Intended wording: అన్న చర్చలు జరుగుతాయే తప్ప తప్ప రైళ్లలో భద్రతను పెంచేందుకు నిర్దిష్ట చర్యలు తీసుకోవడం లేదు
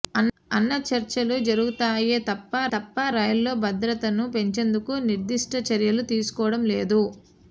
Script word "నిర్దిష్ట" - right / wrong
right